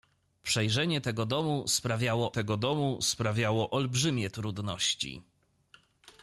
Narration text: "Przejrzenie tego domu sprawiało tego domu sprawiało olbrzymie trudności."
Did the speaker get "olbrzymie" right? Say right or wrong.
right